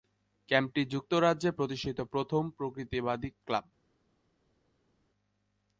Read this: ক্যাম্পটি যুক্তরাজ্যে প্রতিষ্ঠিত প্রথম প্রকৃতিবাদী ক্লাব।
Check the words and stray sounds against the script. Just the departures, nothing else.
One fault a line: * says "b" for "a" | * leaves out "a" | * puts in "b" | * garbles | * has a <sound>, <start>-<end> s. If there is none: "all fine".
all fine